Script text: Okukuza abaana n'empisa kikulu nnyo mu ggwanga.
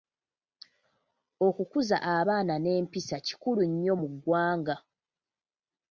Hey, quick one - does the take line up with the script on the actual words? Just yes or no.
yes